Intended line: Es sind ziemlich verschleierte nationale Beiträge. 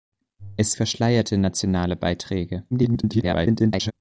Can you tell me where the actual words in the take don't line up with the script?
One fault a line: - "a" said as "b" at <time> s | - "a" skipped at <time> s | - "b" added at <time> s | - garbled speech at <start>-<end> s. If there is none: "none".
- "sind ziemlich" skipped at 0.7 s
- garbled speech at 2.7-3.9 s